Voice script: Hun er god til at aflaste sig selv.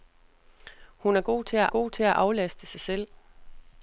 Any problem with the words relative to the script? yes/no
yes